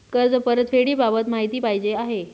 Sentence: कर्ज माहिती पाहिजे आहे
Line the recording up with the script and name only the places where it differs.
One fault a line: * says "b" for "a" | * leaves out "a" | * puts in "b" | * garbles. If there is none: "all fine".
* puts in "परतफेडीबाबत"